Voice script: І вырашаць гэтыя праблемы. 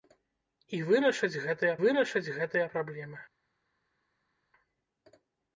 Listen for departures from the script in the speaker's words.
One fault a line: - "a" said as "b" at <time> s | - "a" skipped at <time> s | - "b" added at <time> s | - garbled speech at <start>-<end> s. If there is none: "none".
- "вырашаць гэтыя" added at 1.8 s